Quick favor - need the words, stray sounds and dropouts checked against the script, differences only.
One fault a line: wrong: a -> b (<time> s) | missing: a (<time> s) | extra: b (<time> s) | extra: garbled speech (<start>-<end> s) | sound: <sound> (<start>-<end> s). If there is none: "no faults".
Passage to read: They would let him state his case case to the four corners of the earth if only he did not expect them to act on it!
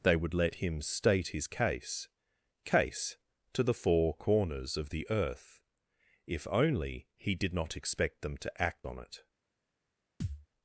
sound: thud (10.2-10.5 s)